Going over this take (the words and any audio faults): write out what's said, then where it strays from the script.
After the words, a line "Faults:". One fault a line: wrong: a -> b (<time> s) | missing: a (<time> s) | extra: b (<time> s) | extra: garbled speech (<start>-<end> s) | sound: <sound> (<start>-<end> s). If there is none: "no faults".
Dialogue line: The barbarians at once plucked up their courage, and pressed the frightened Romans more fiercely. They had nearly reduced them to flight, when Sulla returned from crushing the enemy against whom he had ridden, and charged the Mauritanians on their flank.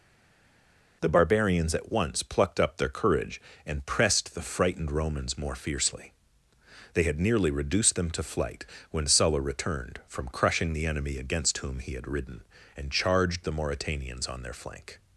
The barbarians at once plucked up their courage, and pressed the frightened Romans more fiercely. They had nearly reduced them to flight, when Sulla returned from crushing the enemy against whom he had ridden, and charged the Mauritanians on their flank.
Faults:
no faults